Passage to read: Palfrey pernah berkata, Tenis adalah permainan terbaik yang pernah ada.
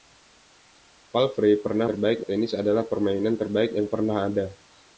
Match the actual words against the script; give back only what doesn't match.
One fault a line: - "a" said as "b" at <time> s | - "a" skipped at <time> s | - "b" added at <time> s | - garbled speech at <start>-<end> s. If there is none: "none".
- "berkata" said as "terbaik" at 1.8 s